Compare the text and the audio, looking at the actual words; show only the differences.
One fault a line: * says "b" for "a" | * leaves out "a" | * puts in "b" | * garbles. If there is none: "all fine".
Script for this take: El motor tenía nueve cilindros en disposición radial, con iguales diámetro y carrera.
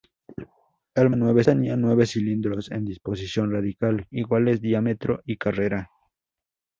* says "nueve" for "motor"
* leaves out "con"